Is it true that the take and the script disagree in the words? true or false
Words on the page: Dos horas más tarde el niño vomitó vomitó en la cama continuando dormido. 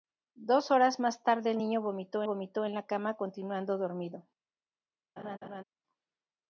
false